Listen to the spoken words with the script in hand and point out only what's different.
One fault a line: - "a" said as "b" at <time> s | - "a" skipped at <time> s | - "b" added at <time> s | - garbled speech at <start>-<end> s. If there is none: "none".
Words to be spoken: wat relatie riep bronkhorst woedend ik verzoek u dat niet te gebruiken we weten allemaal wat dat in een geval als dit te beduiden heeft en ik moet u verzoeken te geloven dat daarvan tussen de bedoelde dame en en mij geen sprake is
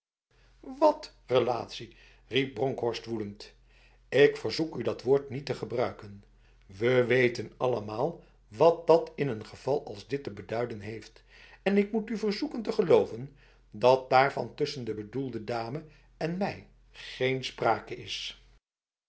- "woord" added at 5.0 s
- "en" skipped at 16.4 s